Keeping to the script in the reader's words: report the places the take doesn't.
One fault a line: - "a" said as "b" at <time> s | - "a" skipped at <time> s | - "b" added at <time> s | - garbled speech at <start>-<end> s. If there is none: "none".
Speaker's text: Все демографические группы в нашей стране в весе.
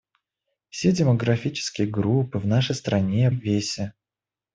none